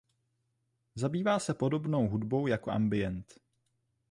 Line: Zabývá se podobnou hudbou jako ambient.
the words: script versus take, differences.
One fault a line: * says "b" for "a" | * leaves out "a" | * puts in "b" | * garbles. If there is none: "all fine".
all fine